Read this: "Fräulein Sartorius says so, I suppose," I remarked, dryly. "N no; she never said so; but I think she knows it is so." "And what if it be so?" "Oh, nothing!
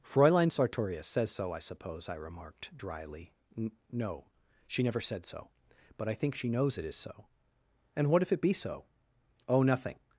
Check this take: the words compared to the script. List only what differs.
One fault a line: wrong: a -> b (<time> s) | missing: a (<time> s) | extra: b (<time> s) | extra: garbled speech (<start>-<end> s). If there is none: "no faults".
no faults